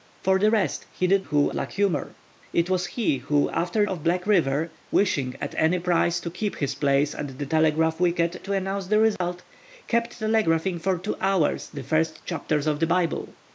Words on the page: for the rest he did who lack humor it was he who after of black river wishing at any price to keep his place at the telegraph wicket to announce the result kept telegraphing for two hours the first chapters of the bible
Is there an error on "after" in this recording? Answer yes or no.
no